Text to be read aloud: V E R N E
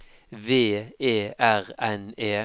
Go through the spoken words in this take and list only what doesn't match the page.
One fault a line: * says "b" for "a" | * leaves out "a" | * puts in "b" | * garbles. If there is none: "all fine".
all fine